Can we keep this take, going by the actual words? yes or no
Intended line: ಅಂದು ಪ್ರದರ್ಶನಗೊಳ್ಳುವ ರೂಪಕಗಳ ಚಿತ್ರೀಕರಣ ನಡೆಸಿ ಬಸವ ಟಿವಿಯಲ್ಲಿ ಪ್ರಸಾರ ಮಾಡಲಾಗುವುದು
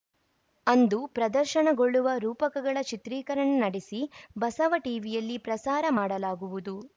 yes